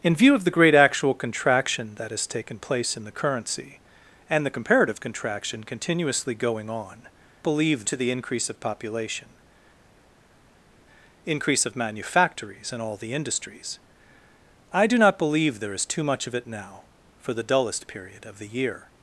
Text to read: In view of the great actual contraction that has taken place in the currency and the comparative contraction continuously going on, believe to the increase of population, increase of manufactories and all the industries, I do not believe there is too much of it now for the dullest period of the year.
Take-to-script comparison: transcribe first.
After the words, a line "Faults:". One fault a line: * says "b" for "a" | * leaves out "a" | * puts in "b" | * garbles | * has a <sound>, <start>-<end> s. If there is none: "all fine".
In view of the great actual contraction that has taken place in the currency and the comparative contraction continuously going on, believe to the increase of population, increase of manufactories and all the industries, I do not believe there is too much of it now for the dullest period of the year.
Faults:
all fine